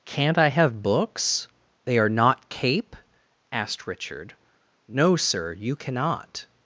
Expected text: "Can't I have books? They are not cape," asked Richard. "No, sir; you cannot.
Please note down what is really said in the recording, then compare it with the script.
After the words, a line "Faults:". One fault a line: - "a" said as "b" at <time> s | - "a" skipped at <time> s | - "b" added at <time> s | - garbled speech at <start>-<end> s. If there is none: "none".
"Can't I have books? They are not cape," asked Richard. "No, sir; you cannot.
Faults:
none